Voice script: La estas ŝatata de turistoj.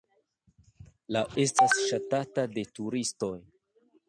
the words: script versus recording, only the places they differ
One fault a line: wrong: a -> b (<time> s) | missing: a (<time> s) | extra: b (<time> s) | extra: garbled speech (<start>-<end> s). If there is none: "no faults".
no faults